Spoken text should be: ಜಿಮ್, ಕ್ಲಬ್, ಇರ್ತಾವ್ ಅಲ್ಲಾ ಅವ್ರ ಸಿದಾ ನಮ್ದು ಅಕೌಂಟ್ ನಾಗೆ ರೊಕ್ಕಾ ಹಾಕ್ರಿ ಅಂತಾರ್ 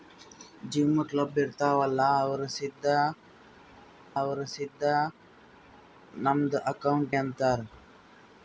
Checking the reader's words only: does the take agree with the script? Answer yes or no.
no